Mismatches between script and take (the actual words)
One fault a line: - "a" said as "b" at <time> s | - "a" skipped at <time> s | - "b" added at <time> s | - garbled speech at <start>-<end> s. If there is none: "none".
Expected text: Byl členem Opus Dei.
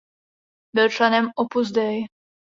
none